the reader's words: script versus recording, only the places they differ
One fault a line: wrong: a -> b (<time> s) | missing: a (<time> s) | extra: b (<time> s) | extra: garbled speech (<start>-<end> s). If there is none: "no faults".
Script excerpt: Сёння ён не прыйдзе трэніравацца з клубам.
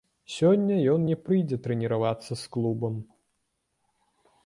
no faults